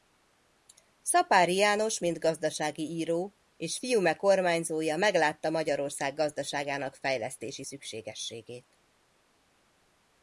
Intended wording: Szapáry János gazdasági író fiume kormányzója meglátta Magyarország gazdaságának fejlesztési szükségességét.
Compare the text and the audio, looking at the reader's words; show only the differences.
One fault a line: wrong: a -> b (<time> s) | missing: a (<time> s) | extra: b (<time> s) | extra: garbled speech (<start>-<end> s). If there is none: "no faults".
extra: mint (2.0 s)
extra: és (3.6 s)